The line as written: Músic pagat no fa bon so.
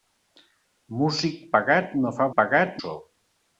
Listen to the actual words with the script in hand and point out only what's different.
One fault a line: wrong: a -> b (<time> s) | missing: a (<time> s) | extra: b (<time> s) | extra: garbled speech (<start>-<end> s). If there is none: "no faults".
wrong: bon -> pagat (2.4 s)